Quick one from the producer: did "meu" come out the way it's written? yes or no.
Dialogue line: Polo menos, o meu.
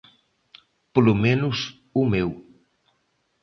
yes